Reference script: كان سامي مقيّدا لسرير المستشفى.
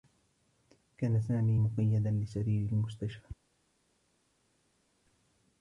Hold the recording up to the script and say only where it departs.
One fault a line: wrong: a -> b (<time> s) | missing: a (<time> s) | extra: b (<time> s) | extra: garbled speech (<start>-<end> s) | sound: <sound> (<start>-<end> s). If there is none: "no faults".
no faults